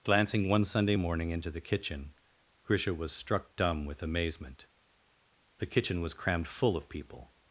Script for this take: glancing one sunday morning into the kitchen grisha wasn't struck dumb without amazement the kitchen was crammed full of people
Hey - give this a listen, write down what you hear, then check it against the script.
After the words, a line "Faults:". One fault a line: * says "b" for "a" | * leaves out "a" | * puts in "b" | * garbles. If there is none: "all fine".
glancing one sunday morning into the kitchen grisha was struck dumb with amazement the kitchen was crammed full of people
Faults:
* says "was" for "wasn't"
* says "with" for "without"